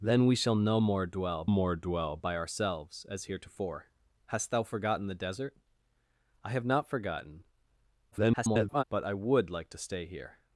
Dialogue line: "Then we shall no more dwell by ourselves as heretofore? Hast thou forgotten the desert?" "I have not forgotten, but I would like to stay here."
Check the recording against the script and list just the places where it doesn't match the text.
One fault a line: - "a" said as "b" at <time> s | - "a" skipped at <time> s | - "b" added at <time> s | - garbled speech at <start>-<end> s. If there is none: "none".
- "more dwell" added at 1.5 s
- garbled speech at 8.1-8.8 s